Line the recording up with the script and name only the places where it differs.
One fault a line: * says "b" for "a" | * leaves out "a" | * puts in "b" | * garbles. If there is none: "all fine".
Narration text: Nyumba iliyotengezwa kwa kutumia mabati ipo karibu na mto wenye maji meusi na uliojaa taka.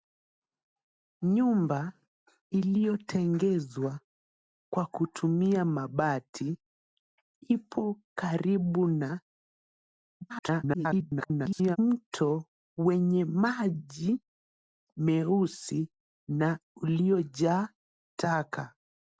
* garbles